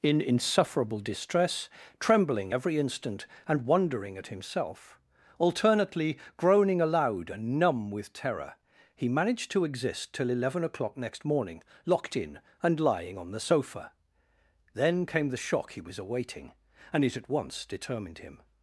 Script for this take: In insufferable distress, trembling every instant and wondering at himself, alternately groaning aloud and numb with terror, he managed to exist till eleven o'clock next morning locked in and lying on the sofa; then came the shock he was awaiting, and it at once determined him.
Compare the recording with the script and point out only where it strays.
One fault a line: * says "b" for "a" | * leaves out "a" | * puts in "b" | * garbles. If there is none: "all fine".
all fine